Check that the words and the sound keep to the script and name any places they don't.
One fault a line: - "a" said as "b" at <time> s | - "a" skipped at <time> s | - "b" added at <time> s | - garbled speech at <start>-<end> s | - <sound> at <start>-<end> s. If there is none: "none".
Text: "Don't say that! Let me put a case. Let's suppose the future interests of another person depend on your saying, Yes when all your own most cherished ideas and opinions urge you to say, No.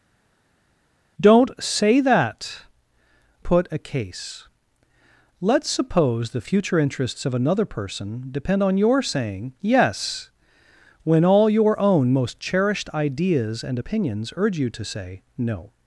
- "Let me" skipped at 2.7 s